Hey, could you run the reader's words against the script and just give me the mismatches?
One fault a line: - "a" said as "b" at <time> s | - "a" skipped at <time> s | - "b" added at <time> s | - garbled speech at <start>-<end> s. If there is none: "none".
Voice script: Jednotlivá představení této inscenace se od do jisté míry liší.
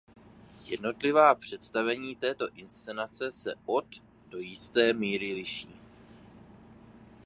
none